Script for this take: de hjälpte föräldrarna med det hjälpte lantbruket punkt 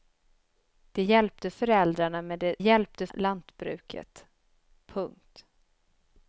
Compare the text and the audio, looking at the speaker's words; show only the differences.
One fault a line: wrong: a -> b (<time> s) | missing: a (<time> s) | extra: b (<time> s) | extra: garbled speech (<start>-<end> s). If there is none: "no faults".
no faults